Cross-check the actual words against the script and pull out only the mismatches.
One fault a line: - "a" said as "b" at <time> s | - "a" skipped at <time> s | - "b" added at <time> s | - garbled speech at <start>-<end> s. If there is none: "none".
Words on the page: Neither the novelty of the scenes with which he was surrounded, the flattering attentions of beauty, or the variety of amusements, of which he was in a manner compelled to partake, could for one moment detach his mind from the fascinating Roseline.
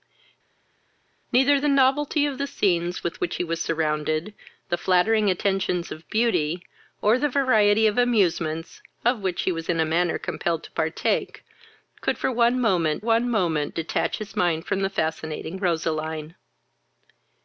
- "one moment" added at 13.0 s